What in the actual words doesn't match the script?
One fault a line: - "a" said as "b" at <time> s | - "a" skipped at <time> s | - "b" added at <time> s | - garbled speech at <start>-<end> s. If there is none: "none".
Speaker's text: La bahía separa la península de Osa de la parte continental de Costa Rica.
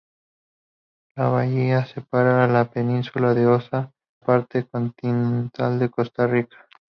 - "de la" skipped at 3.9 s